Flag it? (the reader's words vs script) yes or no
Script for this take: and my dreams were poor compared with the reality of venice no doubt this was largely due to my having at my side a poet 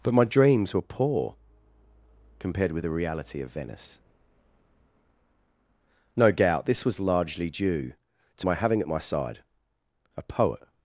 yes